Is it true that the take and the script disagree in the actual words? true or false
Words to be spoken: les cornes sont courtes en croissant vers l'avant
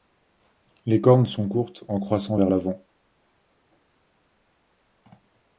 false